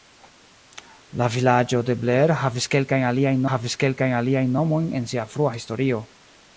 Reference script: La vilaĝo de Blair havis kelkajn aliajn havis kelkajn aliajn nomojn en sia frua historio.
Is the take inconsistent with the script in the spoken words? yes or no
no